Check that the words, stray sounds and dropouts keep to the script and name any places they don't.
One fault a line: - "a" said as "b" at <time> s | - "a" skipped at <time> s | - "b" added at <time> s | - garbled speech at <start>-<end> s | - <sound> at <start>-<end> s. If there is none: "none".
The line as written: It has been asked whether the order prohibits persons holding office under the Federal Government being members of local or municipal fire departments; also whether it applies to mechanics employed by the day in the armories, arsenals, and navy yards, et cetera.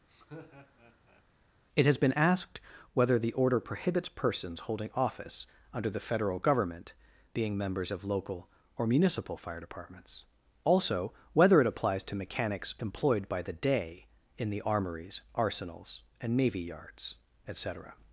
- laugh at 0.1-1.2 s